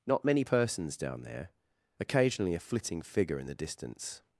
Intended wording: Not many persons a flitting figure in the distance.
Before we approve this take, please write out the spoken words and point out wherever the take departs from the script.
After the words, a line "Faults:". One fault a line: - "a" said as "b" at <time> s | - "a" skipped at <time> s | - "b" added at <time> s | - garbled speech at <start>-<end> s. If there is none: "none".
Not many persons down there, occasionally a flitting figure in the distance.
Faults:
- "down there occasionally" added at 1.0 s